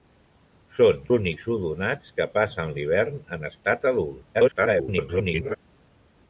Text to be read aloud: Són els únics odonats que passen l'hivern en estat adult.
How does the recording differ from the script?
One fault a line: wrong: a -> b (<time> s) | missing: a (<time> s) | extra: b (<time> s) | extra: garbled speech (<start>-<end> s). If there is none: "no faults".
missing: els (1.0 s)
extra: garbled speech (4.3-5.6 s)